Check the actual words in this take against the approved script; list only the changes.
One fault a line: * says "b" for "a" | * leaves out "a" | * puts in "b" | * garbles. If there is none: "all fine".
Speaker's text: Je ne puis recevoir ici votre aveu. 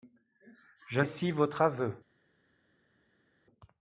* leaves out "ne puis recevoir"